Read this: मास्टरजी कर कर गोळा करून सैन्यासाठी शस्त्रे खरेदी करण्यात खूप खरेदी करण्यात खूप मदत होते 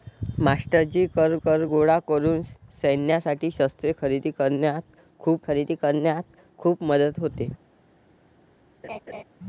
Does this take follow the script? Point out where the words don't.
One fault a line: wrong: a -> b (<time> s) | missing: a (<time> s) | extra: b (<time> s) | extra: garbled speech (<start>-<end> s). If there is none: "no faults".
no faults